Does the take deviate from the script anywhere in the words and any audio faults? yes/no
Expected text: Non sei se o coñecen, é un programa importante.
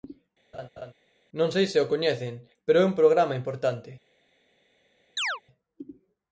yes